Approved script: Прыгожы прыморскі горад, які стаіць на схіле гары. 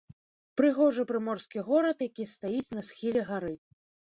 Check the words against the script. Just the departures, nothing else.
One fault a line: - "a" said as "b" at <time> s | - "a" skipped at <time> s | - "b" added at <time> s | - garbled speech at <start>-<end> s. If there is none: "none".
none